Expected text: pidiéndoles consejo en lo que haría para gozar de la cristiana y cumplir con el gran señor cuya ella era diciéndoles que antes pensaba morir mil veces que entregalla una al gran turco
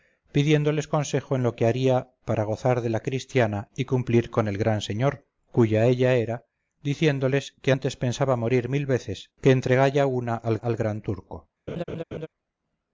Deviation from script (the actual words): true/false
true